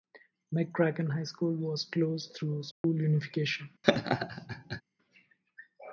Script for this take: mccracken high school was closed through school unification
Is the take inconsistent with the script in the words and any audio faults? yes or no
yes